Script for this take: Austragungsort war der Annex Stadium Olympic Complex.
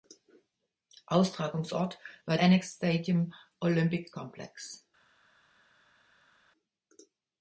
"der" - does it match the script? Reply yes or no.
no